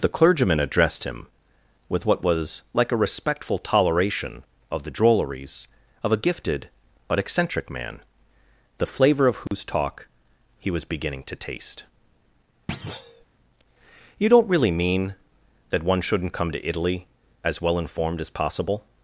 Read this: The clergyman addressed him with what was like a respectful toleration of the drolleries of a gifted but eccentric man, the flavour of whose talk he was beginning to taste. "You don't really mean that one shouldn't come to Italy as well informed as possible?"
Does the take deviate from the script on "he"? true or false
false